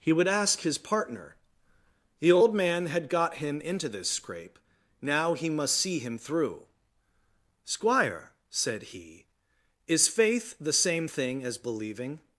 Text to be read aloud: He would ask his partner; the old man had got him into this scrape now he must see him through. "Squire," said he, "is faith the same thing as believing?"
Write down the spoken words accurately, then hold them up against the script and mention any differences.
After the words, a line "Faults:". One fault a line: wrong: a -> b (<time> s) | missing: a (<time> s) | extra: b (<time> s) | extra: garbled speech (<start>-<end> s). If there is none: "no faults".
He would ask his partner; the old man had got him into this scrape now he must see him through. "Squire," said he, "is faith the same thing as believing?"
Faults:
no faults